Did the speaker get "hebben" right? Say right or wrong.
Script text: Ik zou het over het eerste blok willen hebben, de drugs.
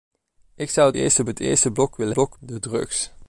wrong